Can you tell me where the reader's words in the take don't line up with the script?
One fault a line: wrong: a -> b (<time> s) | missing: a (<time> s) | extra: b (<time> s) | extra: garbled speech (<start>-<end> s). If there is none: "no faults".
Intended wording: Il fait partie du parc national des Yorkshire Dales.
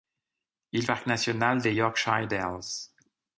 missing: fait partie du (0.9 s)